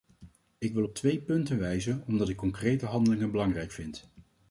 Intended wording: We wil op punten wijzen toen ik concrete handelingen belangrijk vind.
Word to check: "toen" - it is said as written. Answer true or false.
false